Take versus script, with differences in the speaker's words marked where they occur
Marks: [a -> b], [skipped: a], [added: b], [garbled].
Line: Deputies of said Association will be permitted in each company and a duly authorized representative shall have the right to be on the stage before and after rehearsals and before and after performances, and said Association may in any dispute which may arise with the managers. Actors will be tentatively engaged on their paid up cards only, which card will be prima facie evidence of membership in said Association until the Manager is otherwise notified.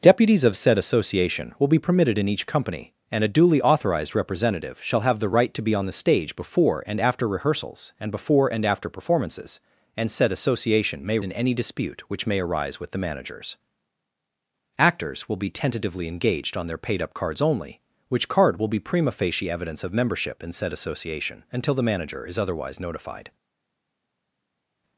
Deputies of said Association will be permitted in each company and a duly authorized representative shall have the right to be on the stage before and after rehearsals and before and after performances, and said Association may in any dispute which may arise with the managers. Actors will be tentatively engaged on their paid up cards only, which card will be prima facie evidence of membership in said Association until the Manager is otherwise notified.